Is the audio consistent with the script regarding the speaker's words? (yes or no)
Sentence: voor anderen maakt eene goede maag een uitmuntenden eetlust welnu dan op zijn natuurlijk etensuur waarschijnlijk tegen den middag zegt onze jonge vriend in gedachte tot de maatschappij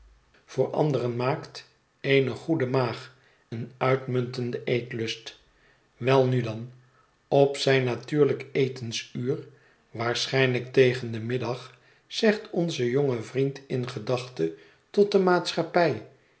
yes